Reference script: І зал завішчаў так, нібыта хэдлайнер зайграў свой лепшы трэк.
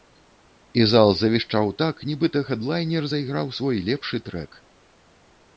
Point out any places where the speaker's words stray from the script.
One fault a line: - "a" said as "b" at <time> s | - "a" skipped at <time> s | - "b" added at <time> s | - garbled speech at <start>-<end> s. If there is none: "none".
none